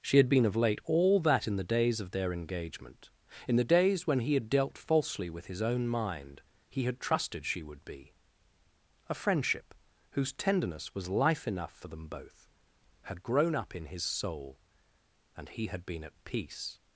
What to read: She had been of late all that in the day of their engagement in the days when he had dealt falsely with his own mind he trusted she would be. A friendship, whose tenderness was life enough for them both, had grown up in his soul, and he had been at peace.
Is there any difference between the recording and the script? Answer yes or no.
yes